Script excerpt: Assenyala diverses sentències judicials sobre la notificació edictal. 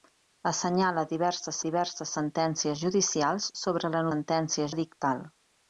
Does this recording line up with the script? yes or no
no